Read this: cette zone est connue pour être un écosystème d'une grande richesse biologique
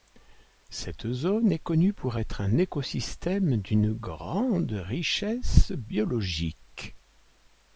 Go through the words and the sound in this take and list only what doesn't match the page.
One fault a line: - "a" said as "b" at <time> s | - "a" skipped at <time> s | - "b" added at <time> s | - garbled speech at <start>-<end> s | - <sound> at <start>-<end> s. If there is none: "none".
none